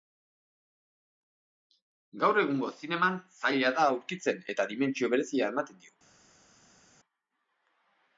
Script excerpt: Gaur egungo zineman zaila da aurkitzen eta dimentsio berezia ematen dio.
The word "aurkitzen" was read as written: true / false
true